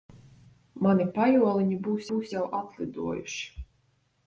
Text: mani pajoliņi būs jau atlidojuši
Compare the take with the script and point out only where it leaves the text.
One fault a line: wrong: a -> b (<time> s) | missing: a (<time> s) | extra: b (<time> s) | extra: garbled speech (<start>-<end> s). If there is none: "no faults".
extra: būs (2.1 s)